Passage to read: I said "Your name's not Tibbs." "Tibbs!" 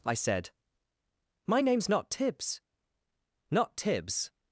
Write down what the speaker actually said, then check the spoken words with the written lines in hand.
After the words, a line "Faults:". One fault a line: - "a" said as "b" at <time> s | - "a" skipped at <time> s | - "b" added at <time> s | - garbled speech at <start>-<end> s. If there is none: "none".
I said "My name's not Tibbs." "Not Tibbs!"
Faults:
- "Your" said as "My" at 1.5 s
- "Not" added at 3.5 s